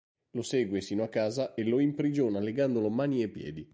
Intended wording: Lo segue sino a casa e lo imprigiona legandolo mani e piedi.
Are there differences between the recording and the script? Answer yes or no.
no